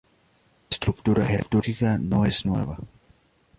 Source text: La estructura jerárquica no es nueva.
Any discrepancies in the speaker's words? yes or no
no